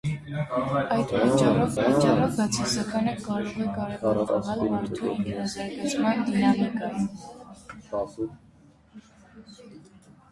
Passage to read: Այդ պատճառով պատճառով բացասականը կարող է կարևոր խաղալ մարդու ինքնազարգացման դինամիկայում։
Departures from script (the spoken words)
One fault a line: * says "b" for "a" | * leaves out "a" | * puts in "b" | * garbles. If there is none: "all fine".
all fine